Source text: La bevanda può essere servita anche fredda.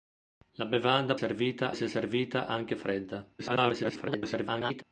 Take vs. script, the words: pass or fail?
fail